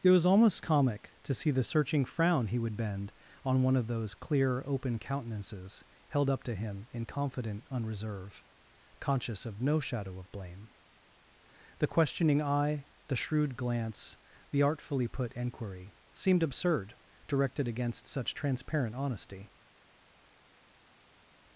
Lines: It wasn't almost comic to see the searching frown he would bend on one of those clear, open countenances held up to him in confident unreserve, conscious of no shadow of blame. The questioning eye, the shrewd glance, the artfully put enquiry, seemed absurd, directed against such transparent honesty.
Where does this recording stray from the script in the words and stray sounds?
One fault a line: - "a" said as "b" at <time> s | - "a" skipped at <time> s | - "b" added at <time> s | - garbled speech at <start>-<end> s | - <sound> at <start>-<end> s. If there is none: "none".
- "wasn't" said as "was" at 0.1 s